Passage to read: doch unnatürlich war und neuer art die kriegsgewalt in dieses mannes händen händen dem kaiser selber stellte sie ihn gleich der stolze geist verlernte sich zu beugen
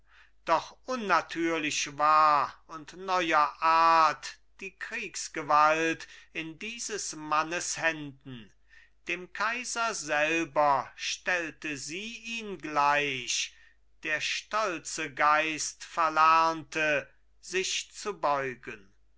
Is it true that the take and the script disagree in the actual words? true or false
true